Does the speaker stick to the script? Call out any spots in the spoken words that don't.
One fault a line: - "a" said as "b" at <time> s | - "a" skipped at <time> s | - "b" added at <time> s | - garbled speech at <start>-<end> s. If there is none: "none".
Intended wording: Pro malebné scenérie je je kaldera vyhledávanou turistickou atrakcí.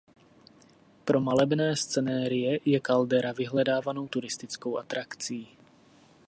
- "je" skipped at 2.8 s